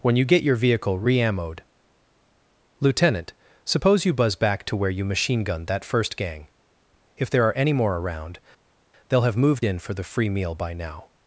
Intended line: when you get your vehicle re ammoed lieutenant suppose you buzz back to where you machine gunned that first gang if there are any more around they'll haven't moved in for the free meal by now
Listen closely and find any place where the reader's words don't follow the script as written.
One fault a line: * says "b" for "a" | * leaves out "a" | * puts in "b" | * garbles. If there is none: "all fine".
* says "have" for "haven't"